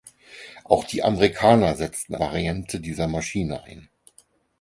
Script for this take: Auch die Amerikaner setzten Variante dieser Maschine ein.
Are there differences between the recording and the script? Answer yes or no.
no